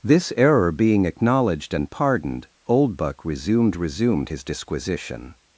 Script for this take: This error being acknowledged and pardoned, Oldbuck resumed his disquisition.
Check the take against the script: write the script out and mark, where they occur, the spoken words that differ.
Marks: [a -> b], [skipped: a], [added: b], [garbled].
This error being acknowledged and pardoned, Oldbuck resumed [added: resumed] his disquisition.